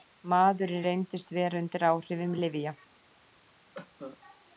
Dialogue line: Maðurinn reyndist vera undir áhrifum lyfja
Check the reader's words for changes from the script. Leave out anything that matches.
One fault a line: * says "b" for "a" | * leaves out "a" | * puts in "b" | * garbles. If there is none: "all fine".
all fine